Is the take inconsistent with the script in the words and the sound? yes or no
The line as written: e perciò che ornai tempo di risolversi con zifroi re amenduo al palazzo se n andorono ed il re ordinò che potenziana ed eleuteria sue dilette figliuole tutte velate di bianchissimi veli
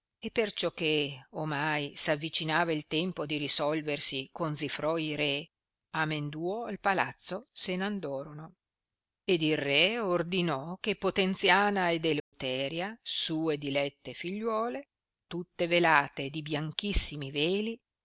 yes